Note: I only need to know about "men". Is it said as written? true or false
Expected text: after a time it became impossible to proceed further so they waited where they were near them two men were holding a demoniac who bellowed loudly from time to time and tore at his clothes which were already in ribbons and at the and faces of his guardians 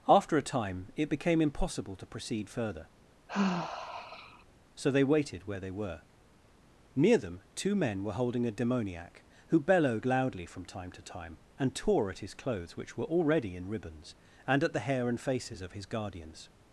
true